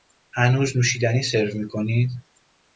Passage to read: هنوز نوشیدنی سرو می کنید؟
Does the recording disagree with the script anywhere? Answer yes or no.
no